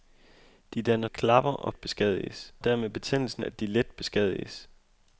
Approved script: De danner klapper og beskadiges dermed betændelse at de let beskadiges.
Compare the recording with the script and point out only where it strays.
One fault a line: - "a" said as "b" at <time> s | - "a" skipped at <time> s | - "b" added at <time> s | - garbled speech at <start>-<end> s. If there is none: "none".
none